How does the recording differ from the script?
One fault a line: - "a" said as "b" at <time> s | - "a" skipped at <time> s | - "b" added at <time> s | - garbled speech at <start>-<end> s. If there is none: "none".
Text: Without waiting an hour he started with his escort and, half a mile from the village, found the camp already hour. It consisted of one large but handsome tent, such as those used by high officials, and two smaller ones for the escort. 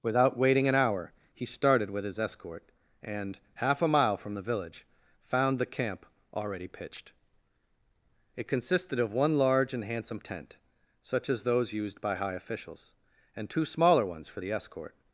- "hour" said as "pitched" at 6.7 s
- "but" said as "and" at 9.7 s